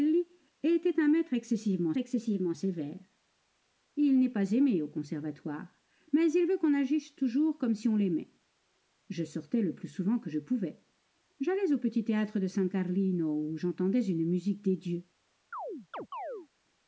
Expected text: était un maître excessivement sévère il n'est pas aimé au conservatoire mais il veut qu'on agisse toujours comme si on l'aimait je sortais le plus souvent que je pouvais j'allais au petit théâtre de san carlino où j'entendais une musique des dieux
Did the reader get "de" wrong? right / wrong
right